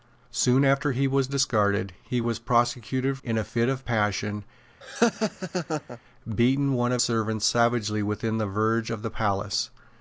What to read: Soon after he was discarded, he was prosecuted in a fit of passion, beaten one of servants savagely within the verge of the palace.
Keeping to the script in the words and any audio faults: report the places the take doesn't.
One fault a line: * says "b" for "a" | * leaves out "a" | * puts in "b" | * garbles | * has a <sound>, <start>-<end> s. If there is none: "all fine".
* has a laugh, 4.8-6.0 s